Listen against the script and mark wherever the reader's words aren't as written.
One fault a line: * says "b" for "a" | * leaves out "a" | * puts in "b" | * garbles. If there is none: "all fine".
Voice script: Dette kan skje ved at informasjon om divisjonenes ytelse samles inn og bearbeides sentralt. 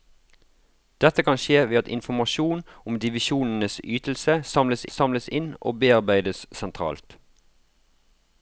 * puts in "samles"